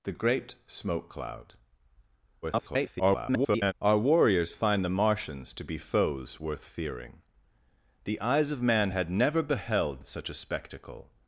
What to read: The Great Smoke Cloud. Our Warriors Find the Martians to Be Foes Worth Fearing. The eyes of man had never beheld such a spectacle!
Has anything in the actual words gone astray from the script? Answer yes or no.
yes